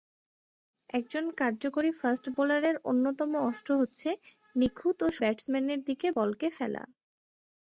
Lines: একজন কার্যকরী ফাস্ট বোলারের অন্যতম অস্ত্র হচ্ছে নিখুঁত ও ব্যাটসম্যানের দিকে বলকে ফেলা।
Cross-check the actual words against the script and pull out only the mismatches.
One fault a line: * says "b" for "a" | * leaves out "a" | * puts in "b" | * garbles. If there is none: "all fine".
all fine